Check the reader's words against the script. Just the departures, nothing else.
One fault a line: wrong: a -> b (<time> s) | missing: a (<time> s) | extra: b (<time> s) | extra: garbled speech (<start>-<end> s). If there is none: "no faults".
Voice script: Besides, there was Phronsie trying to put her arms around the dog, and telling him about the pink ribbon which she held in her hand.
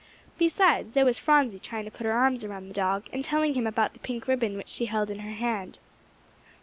no faults